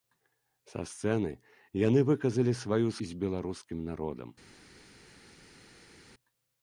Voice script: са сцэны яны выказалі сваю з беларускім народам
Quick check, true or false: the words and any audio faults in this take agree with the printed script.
true